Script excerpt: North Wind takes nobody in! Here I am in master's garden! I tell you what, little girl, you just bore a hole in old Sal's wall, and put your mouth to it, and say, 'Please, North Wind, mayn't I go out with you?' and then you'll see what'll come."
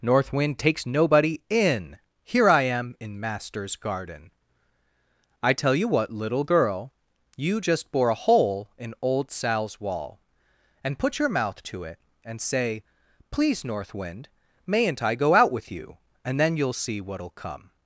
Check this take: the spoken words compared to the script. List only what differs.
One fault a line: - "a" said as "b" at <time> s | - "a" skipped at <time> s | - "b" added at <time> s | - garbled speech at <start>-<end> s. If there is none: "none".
none